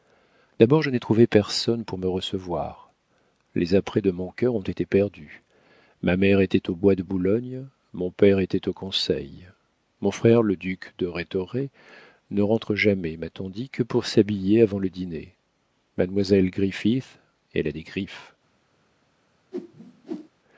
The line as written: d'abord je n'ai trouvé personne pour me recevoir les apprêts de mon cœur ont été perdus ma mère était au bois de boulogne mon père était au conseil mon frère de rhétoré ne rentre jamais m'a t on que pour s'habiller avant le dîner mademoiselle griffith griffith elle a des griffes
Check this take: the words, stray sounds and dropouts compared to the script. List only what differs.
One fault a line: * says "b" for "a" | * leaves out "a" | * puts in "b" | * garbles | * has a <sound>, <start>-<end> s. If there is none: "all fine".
* puts in "le duc"
* puts in "dit"
* leaves out "griffith"
* has a whoosh, 19.5-20.3 s